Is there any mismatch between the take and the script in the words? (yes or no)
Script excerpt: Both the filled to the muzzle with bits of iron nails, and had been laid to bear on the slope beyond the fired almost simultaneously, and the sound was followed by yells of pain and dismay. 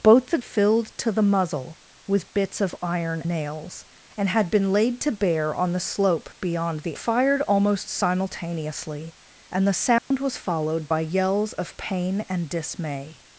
no